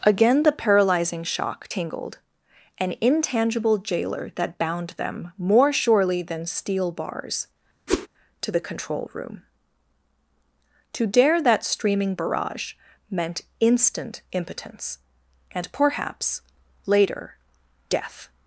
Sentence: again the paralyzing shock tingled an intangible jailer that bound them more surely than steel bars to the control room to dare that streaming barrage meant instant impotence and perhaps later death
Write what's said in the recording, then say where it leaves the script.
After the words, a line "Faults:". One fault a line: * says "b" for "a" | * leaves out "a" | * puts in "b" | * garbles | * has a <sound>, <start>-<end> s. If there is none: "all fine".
again the paralyzing shock tingled an intangible jailer that bound them more surely than steel bars to the control room to dare that streaming barrage meant instant impotence and perhaps later death
Faults:
* has a whoosh, 7.9-8.1 s